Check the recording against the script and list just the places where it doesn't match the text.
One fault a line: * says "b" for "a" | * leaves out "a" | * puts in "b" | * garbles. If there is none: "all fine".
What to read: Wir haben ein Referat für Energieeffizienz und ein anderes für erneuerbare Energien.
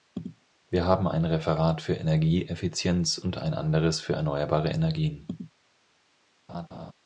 all fine